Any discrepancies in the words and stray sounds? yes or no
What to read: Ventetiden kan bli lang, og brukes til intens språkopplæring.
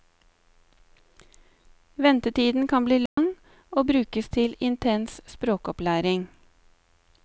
yes